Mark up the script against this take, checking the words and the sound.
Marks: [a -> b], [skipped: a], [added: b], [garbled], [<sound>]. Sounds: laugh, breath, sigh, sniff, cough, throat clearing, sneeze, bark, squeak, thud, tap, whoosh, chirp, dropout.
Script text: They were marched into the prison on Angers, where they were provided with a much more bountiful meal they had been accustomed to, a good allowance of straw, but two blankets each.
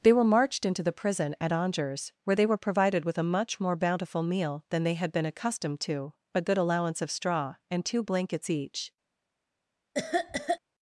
They were marched into the prison [on -> at] Angers, where they were provided with a much more bountiful meal [added: than] they had been accustomed to, a good allowance of straw, [but -> and] two blankets each. [cough]